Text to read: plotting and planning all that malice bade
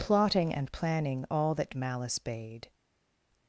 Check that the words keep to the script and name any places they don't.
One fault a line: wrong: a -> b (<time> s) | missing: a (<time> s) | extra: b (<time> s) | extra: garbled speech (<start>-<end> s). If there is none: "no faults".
no faults